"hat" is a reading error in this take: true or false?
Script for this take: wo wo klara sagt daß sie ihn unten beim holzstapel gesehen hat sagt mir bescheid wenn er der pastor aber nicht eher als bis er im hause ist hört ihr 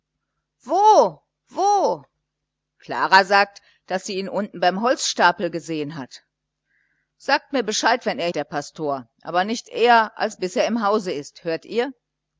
false